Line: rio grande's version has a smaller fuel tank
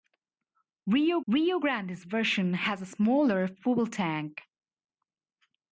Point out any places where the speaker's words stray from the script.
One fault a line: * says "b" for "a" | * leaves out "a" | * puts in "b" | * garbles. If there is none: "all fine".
* puts in "rio"